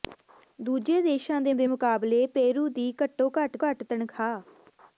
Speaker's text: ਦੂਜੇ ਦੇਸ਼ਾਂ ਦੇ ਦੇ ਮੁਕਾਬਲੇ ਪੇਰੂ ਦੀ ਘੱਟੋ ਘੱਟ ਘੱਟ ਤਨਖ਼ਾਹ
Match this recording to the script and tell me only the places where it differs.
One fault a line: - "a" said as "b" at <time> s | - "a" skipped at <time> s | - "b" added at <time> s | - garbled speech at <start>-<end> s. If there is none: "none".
none